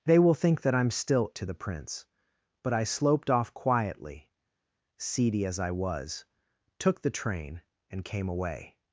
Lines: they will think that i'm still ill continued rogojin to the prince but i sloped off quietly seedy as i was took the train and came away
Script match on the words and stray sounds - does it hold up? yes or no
no